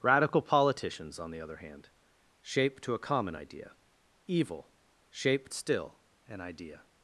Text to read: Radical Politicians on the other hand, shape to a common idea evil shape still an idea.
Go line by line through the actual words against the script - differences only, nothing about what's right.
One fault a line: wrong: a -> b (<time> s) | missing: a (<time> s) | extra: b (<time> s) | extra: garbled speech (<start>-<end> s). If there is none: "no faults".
no faults